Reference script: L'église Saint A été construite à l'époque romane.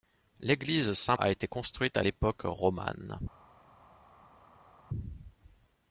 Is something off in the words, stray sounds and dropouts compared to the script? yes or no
no